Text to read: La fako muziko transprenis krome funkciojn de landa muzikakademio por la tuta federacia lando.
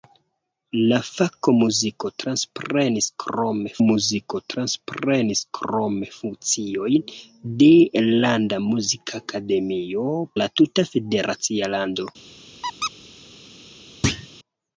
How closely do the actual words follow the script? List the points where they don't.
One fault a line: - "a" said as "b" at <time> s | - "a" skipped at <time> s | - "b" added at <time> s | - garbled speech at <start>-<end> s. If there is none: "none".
- "muziko transprenis krome" added at 3.8 s
- "por" skipped at 10.1 s